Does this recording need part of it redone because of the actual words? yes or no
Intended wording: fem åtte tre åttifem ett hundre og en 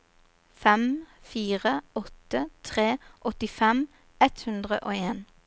yes